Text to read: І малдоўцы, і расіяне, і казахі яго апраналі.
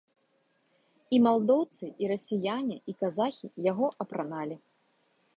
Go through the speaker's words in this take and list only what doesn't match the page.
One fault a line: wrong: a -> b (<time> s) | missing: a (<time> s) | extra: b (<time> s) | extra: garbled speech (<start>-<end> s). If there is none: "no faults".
no faults